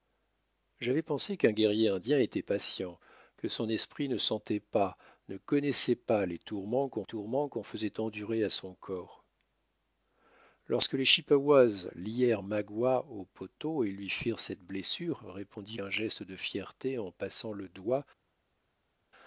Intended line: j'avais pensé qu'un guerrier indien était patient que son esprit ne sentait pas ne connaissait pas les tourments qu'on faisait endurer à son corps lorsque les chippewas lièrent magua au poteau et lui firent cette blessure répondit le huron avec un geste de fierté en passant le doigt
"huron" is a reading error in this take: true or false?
true